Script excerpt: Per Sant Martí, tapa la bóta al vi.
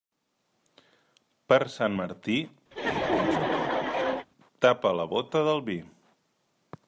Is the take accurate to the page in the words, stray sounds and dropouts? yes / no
no